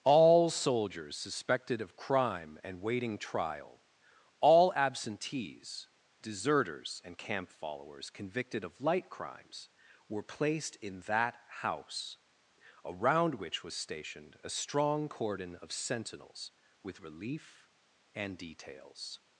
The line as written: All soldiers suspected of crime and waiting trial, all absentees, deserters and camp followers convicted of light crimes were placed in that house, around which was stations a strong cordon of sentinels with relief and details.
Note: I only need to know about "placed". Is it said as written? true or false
true